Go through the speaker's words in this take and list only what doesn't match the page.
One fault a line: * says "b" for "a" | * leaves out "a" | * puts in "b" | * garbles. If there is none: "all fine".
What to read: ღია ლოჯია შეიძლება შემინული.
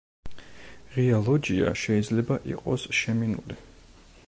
* puts in "იყოს"